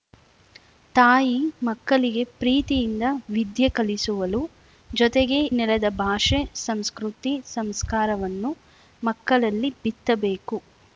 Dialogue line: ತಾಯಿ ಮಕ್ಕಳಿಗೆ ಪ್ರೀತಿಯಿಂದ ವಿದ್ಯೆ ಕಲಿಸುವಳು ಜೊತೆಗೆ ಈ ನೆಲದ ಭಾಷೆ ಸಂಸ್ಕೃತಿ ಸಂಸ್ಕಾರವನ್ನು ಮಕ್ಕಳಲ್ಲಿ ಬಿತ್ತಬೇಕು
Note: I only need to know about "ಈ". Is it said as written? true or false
false